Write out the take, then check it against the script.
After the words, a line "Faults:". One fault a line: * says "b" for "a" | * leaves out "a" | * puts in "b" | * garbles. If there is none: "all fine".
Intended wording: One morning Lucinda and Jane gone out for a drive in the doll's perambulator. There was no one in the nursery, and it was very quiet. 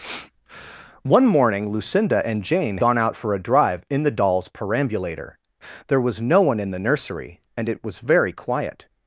One morning Lucinda and Jane gone out for a drive in the doll's perambulator. There was no one in the nursery, and it was very quiet.
Faults:
all fine